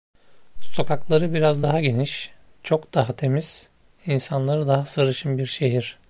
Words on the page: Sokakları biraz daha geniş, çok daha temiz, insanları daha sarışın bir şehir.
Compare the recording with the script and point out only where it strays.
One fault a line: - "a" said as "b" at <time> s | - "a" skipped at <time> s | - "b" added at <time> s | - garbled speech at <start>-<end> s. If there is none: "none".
none